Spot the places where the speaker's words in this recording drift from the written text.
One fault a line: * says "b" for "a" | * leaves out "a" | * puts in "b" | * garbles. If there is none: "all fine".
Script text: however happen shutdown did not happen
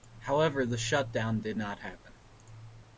* says "the" for "happen"